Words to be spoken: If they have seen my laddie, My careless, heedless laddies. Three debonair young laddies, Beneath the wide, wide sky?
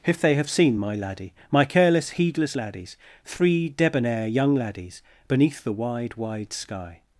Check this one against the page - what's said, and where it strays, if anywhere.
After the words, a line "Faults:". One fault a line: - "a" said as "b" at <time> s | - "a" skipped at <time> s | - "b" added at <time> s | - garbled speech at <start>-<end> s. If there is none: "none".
If they have seen my laddie, My careless, heedless laddies. Three debonair young laddies, Beneath the wide, wide sky?
Faults:
none